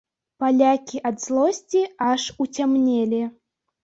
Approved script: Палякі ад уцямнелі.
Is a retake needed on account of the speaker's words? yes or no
yes